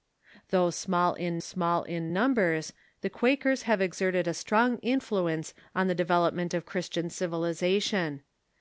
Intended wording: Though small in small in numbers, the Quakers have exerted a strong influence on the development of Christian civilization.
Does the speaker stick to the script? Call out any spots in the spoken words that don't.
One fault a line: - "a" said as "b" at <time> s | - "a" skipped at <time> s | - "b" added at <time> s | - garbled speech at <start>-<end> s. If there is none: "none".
none